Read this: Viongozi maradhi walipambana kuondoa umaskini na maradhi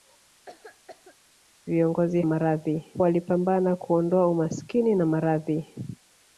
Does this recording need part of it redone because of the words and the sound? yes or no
yes